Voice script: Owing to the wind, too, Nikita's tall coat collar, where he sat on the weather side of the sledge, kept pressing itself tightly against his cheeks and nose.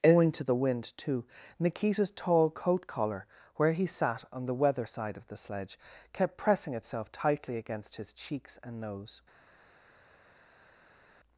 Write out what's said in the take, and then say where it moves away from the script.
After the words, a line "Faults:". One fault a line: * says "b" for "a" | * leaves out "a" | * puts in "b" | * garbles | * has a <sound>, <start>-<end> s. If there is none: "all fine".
Owing to the wind, too, Nikita's tall coat collar, where he sat on the weather side of the sledge, kept pressing itself tightly against his cheeks and nose.
Faults:
all fine